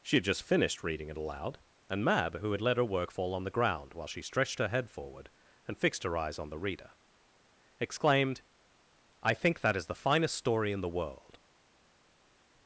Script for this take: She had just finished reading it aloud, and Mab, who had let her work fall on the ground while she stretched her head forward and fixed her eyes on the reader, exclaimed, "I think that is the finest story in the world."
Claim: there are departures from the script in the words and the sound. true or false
false